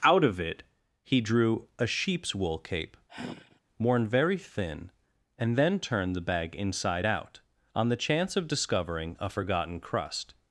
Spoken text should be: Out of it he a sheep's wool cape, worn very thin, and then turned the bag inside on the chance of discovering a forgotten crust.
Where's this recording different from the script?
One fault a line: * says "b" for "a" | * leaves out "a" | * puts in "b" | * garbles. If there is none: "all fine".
* puts in "drew"
* puts in "out"